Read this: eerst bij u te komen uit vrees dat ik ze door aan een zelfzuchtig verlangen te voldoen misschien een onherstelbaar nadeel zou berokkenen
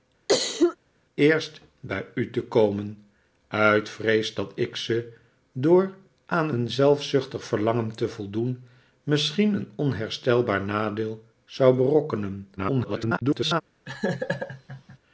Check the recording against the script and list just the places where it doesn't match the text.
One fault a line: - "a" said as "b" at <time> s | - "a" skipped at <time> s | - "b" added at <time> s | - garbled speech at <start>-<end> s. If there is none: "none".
- garbled speech at 12.6-13.6 s